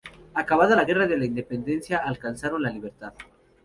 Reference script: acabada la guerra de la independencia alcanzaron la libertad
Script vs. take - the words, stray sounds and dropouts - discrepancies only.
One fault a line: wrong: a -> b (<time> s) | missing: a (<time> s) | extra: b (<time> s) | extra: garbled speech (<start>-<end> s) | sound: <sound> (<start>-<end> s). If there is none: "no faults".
no faults